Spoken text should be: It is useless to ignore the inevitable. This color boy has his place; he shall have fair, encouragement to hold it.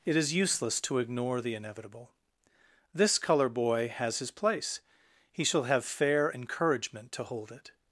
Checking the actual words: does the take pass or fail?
pass